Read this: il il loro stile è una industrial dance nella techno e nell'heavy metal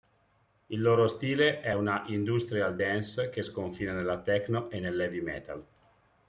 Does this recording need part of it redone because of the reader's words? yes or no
yes